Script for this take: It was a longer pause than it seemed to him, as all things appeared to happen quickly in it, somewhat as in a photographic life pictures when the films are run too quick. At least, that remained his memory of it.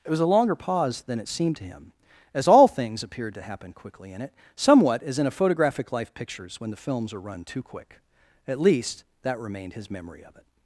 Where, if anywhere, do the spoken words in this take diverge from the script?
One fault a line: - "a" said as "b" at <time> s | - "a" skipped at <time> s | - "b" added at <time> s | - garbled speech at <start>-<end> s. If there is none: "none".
none